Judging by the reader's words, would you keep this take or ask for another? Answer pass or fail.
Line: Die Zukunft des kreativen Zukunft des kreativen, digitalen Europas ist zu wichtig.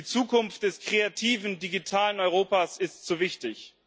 fail